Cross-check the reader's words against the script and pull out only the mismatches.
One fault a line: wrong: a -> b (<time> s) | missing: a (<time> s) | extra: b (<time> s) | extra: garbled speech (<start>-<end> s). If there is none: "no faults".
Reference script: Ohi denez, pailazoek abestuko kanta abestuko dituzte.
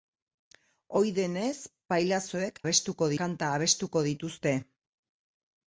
no faults